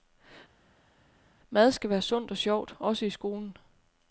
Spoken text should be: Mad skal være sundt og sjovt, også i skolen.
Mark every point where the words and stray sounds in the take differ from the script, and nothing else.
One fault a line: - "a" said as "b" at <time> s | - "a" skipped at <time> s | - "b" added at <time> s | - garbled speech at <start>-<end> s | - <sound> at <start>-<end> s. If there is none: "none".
none